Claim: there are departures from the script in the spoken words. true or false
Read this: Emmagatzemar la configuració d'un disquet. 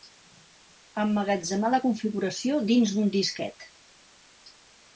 true